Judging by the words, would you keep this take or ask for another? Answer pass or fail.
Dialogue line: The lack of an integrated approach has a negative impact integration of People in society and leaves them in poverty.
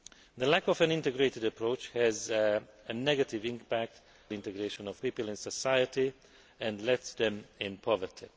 pass